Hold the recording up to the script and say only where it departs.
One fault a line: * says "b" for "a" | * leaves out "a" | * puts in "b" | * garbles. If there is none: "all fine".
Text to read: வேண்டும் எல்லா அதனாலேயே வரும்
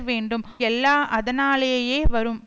all fine